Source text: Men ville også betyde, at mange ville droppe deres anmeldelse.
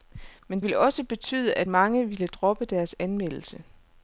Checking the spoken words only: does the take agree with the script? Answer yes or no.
yes